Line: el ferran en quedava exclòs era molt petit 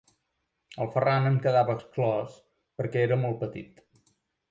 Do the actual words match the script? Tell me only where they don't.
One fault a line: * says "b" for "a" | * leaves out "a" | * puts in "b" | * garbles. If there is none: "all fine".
* puts in "perquè"